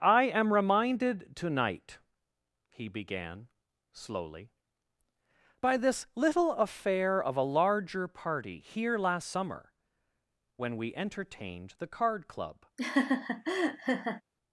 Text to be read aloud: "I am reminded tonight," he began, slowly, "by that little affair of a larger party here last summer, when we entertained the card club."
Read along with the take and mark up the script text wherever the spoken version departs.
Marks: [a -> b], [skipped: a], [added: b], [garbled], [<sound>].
"I am reminded tonight," he began, slowly, "by [that -> this] little affair of a larger party here last summer, when we entertained the card club." [laugh]